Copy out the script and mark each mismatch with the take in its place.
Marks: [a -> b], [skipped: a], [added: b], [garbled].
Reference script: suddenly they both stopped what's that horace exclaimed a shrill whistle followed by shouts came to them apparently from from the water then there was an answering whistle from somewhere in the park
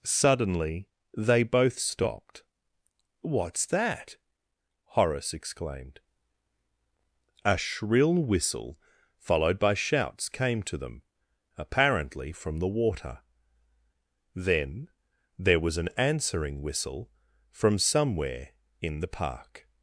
suddenly they both stopped what's that horace exclaimed a shrill whistle followed by shouts came to them apparently from [skipped: from] the water then there was an answering whistle from somewhere in the park